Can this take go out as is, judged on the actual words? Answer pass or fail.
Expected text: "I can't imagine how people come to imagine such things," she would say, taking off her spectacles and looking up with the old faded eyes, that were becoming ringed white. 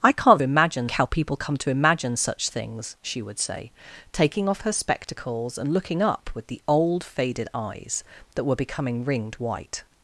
pass